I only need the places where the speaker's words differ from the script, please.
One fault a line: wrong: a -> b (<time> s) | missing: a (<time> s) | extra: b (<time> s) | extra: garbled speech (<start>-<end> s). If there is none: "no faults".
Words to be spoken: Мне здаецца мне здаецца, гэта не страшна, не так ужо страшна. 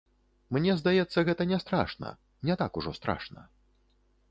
missing: мне здаецца (1.2 s)